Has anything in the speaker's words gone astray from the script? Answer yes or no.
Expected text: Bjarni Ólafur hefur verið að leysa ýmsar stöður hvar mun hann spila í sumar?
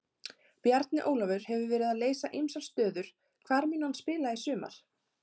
no